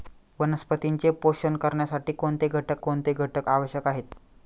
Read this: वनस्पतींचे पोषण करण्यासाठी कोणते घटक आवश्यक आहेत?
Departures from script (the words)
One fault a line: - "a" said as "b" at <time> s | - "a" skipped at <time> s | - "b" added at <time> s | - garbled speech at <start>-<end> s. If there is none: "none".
- "कोणते घटक" added at 2.8 s